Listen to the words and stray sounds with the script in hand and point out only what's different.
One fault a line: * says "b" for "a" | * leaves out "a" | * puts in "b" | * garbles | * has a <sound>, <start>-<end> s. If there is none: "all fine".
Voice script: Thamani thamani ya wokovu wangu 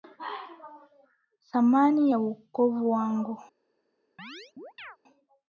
* leaves out "thamani"
* has a chirp, 4.2-5.0 s